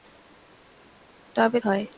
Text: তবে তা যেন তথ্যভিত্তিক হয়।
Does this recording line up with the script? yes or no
no